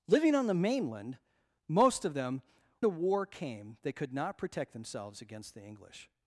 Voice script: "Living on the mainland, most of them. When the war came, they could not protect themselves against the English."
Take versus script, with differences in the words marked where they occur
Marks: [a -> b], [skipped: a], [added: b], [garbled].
"Living on the mainland, most of them. [skipped: When] the war came, they could not protect themselves against the English."